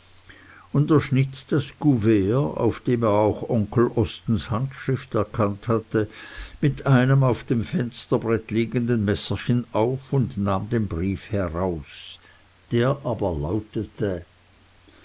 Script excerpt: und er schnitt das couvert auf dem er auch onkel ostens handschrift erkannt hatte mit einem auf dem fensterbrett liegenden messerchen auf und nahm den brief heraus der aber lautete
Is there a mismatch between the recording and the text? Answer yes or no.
no